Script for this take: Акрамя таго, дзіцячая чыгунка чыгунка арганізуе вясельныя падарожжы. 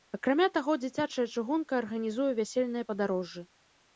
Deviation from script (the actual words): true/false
true